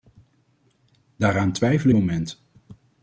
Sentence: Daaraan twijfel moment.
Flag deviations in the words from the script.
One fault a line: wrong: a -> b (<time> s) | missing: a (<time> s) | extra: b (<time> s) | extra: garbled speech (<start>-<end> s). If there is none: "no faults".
no faults